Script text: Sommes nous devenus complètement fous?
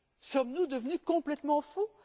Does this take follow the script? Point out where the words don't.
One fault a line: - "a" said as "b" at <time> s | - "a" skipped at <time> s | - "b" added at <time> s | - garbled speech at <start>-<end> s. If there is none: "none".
none